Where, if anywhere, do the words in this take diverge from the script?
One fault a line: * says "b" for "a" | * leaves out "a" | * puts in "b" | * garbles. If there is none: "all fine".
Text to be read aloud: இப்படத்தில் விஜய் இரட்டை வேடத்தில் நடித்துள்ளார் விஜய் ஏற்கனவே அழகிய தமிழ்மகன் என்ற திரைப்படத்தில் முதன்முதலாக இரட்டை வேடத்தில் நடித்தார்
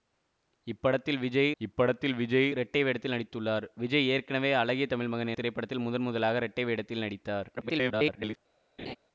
* puts in "இப்படத்தில் விஜய்"
* leaves out "என்ற"
* garbles